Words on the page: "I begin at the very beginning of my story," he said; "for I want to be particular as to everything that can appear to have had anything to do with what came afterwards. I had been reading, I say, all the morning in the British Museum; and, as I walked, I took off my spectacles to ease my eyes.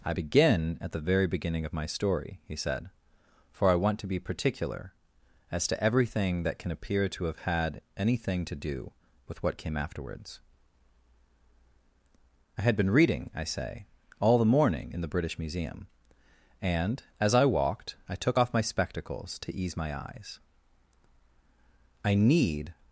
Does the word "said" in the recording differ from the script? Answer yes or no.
no